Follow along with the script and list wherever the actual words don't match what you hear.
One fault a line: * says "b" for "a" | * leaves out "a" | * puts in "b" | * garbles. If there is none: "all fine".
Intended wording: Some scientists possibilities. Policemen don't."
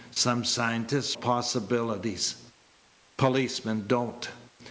all fine